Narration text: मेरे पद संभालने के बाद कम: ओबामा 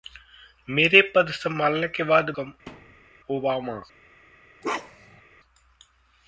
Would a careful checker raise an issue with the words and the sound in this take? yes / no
yes